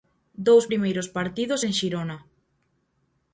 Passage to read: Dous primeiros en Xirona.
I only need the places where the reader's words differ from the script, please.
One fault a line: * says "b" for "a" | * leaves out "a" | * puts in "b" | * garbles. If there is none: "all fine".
* puts in "partidos"